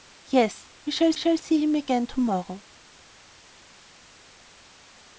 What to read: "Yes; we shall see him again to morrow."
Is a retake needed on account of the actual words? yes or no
yes